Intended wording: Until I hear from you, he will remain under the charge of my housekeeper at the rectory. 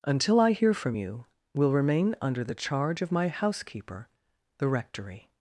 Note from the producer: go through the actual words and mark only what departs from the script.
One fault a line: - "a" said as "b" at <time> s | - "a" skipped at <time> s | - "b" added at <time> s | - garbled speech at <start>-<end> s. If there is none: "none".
- "he" skipped at 1.2 s
- "at" skipped at 4.1 s